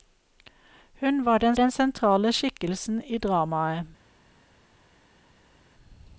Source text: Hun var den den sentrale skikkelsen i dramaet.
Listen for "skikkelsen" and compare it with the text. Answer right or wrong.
right